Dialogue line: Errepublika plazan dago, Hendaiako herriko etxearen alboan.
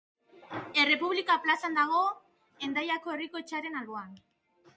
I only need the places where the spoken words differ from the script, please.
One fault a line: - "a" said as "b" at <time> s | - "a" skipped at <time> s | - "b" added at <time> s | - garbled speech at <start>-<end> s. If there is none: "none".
none